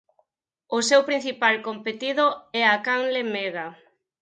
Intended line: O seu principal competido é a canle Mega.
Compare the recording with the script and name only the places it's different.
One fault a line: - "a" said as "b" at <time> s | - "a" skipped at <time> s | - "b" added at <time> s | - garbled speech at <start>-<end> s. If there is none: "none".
none